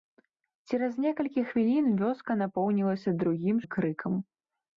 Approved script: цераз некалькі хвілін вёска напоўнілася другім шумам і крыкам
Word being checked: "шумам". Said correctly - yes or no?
no